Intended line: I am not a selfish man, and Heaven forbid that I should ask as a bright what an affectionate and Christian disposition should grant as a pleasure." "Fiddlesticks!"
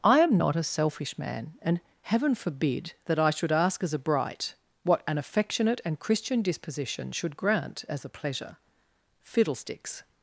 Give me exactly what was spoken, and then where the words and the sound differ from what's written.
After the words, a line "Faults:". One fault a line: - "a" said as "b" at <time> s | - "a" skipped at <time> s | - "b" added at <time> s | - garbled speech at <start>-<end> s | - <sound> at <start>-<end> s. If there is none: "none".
I am not a selfish man, and Heaven forbid that I should ask as a bright what an affectionate and Christian disposition should grant as a pleasure." "Fiddlesticks!"
Faults:
none